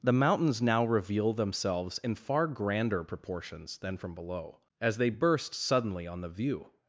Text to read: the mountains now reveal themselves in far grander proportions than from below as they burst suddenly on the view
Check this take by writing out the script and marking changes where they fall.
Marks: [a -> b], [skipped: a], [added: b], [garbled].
the mountains now reveal themselves in far grander proportions than from below as they burst suddenly on the view